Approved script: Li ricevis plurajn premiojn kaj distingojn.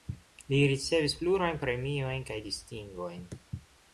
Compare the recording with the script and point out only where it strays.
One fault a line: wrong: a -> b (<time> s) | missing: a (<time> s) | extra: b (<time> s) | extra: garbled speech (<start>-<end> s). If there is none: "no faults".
no faults